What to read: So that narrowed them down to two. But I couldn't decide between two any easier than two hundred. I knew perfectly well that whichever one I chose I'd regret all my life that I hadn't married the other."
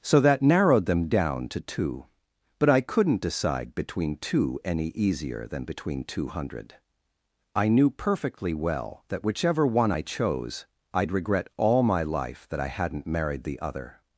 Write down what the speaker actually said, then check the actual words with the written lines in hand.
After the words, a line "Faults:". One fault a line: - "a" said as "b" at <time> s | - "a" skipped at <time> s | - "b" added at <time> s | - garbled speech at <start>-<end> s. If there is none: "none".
So that narrowed them down to two. But I couldn't decide between two any easier than between two hundred. I knew perfectly well that whichever one I chose I'd regret all my life that I hadn't married the other."
Faults:
- "between" added at 5.6 s